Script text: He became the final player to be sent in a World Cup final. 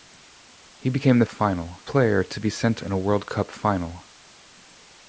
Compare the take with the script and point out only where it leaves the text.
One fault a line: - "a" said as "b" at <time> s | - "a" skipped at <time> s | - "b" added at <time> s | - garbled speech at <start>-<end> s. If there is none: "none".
none